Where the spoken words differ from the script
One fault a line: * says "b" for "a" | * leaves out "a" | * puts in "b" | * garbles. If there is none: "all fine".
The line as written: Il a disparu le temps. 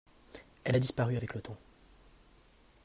* says "Elle" for "Il"
* puts in "avec"